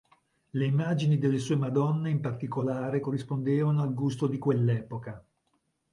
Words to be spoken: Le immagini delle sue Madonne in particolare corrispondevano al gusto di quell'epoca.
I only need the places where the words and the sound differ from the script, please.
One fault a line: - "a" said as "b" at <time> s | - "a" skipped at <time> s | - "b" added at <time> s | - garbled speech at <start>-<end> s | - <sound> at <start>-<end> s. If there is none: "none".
none